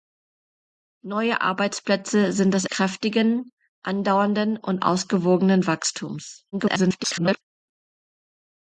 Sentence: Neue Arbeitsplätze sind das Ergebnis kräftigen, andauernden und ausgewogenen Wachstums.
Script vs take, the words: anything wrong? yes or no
yes